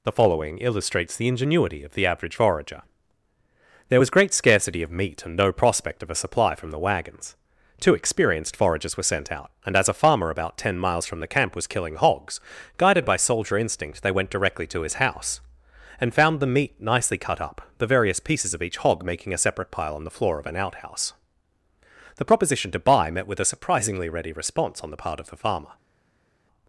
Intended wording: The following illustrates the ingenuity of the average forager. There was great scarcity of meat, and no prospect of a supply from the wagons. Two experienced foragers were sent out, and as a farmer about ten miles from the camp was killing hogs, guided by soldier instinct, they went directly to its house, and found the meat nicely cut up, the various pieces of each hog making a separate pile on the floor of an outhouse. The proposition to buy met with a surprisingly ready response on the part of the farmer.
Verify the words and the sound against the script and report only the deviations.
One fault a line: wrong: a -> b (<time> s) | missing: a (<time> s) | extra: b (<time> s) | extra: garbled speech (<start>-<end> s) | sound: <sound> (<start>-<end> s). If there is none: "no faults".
wrong: its -> his (14.8 s)